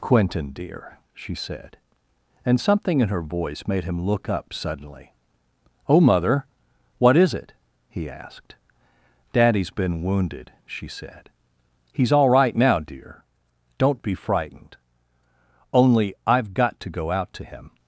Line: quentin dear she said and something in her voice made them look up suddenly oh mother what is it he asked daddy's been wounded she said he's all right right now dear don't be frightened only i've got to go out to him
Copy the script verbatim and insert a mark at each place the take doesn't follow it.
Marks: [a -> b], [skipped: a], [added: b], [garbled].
quentin dear she said and something in her voice made [them -> him] look up suddenly oh mother what is it he asked daddy's been wounded she said he's all right [skipped: right] now dear don't be frightened only i've got to go out to him